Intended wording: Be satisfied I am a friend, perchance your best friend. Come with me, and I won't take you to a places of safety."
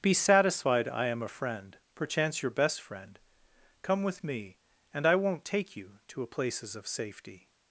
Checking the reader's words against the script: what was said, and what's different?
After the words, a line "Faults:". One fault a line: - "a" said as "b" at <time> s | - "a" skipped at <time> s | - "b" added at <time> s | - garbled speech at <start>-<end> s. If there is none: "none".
Be satisfied I am a friend, perchance your best friend. Come with me, and I won't take you to a places of safety."
Faults:
none